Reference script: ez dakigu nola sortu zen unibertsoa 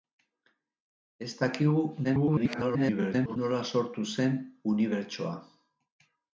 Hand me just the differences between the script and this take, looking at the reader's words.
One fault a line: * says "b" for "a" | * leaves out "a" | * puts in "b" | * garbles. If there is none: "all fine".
* garbles